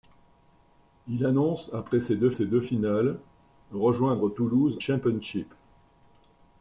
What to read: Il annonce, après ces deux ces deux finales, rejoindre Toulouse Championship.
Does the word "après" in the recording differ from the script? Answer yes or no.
no